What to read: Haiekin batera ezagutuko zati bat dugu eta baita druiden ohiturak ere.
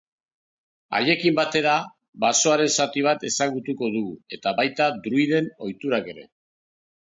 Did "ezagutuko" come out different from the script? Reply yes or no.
yes